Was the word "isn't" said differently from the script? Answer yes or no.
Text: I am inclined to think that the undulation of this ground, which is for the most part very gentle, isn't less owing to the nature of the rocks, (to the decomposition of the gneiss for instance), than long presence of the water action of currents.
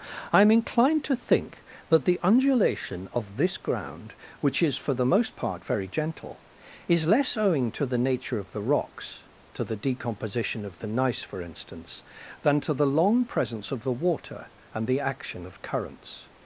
yes